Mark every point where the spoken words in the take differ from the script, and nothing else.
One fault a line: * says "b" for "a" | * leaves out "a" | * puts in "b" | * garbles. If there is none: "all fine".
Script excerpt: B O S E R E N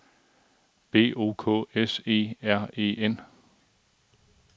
* puts in "K"